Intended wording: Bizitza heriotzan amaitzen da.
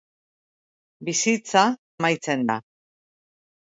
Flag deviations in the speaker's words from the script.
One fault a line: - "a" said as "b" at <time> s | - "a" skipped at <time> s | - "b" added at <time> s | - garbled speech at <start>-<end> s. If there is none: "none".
- "heriotzan" skipped at 1.7 s